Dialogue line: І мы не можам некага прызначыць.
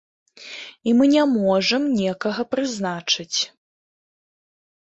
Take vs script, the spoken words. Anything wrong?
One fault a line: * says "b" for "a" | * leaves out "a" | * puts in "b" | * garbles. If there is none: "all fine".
all fine